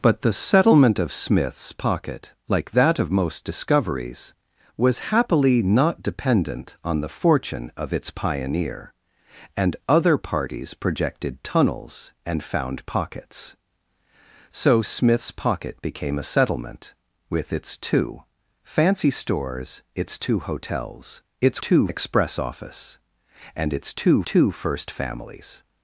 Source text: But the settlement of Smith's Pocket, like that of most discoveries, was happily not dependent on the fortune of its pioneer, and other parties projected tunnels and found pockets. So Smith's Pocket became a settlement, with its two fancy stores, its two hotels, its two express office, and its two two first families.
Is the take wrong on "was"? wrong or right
right